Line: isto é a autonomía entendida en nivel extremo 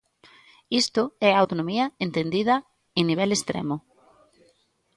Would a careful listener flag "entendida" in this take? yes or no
no